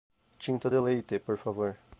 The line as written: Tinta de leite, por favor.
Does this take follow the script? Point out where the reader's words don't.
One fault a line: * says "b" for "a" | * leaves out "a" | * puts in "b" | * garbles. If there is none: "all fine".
all fine